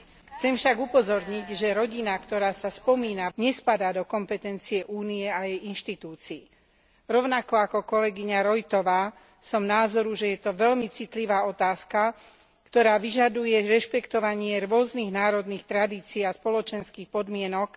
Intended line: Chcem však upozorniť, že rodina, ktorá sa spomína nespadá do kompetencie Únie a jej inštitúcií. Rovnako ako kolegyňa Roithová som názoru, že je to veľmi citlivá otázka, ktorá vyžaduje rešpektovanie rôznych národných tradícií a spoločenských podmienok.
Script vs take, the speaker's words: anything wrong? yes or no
no